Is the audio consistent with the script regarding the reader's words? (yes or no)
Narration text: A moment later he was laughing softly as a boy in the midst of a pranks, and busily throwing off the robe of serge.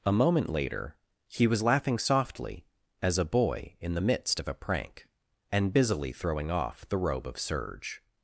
no